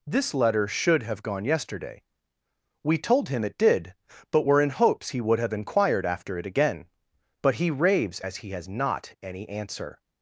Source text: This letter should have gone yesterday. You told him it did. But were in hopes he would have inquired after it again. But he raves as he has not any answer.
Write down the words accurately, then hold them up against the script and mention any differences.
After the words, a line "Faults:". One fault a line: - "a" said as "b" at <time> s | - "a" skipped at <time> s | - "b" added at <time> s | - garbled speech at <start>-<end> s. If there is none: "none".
This letter should have gone yesterday. We told him it did. But were in hopes he would have inquired after it again. But he raves as he has not any answer.
Faults:
- "You" said as "We" at 2.8 s